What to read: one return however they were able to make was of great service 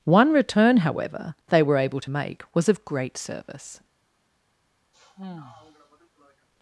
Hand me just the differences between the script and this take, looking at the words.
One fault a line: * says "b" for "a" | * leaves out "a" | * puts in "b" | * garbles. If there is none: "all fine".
all fine